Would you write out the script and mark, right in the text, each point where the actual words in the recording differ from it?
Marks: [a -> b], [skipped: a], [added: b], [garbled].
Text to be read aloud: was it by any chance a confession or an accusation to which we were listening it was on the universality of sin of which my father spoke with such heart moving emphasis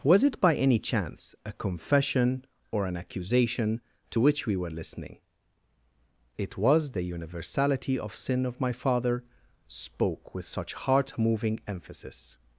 was it by any chance a confession or an accusation to which we were listening it was [skipped: on] the universality of sin of [skipped: which] my father spoke with such heart moving emphasis